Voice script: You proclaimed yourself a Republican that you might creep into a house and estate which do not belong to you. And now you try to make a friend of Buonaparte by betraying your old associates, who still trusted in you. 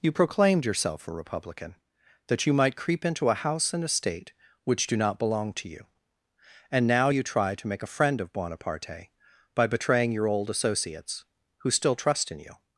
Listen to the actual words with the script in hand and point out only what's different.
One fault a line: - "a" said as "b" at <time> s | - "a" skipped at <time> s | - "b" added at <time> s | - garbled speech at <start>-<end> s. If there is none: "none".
- "trusted" said as "trust" at 11.9 s